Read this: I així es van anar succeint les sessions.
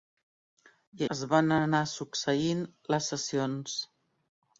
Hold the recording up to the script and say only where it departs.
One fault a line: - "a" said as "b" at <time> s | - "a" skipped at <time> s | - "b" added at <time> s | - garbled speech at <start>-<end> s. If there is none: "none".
- "així" skipped at 1.0 s